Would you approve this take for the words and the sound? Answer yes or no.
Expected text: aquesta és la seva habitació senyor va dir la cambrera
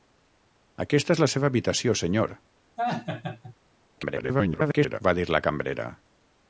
no